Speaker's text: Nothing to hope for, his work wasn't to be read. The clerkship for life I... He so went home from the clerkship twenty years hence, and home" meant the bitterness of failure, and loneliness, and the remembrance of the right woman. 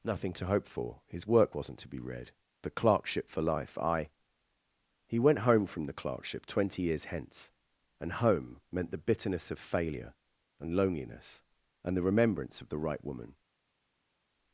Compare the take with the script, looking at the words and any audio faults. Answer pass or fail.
fail